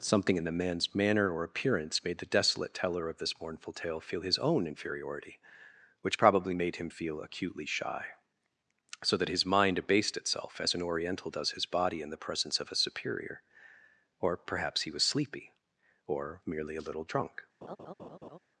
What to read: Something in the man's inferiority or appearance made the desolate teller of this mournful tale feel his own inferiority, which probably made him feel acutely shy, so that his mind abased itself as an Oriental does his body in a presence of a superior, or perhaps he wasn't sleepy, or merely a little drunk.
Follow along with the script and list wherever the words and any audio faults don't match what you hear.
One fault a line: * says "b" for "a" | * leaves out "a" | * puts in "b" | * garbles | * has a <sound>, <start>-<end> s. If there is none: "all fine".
* says "manner" for "inferiority"
* says "the" for "a"
* says "was" for "wasn't"
* has a laugh, 17.6-18.4 s